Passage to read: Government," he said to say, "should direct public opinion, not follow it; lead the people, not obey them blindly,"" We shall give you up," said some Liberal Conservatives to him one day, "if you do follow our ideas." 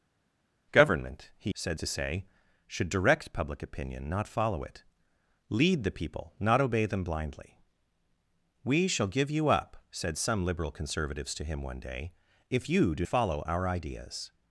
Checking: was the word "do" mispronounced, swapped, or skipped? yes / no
no